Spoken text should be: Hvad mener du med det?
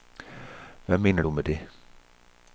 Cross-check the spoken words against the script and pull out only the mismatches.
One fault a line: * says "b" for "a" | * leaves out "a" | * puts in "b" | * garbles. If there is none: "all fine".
all fine